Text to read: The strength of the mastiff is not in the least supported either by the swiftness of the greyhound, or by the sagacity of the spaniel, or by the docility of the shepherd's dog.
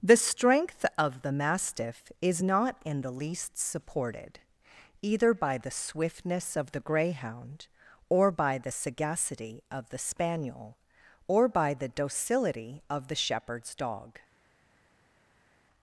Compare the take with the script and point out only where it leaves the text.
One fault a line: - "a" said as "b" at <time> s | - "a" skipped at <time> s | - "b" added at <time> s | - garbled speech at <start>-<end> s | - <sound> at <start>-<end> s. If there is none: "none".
none